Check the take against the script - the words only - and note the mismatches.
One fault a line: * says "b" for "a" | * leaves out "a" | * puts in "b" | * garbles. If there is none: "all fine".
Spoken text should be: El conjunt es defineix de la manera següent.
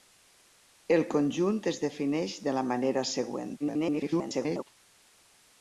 * garbles